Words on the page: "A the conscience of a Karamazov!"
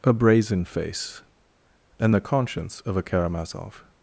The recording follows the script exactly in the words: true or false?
false